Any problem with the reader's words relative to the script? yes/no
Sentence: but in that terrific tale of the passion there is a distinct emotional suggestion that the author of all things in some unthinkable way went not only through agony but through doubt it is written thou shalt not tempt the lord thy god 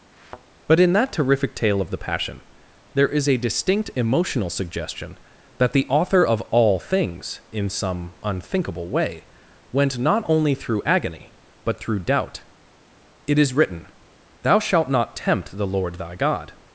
no